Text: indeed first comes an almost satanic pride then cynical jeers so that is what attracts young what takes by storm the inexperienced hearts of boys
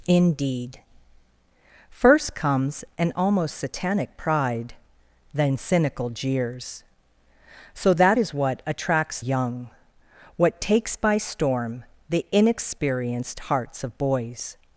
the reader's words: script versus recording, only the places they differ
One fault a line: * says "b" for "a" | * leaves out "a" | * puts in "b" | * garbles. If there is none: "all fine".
all fine